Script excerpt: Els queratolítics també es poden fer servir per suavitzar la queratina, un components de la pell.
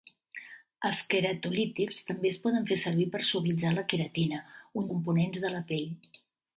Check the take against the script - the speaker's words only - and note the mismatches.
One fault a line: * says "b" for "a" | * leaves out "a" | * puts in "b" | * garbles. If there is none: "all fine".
all fine